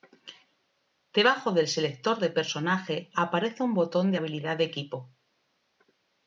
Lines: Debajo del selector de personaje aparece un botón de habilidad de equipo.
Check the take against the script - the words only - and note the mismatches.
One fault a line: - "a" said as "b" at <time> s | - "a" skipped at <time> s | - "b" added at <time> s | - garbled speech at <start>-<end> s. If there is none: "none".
none